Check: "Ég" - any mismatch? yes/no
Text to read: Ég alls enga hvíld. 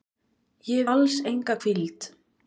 no